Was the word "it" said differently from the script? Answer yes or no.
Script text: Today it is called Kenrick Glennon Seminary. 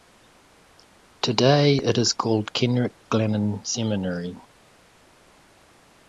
no